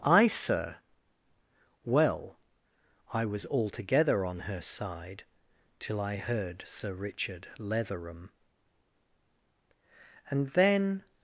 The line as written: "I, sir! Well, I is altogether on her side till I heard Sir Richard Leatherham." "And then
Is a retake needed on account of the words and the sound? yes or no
yes